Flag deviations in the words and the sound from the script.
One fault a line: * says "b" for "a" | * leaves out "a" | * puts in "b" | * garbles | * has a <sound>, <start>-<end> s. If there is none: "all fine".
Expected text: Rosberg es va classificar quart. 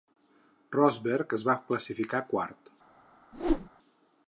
* has a whoosh, 3.3-3.7 s